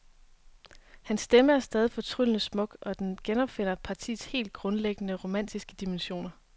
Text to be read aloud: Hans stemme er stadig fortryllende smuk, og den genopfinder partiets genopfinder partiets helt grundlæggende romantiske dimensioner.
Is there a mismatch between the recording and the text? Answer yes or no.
yes